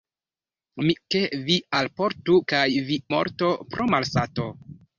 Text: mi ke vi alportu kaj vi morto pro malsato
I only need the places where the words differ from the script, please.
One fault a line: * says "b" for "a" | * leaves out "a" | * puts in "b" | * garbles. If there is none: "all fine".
all fine